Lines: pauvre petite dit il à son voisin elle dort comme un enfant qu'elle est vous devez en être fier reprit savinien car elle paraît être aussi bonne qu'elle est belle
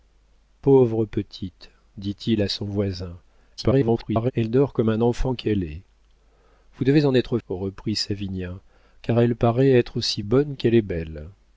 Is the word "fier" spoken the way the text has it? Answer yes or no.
no